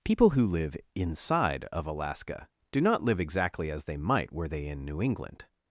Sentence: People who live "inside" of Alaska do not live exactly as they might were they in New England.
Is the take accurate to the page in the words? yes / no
yes